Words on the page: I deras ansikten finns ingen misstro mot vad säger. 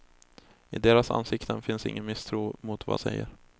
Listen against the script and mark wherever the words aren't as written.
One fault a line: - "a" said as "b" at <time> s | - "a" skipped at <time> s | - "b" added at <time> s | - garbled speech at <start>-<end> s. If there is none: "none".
none